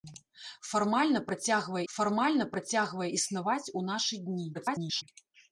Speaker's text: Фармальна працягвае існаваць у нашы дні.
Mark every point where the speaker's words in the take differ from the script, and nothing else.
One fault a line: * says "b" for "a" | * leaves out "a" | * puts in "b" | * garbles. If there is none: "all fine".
* puts in "фармальна працягвае"
* garbles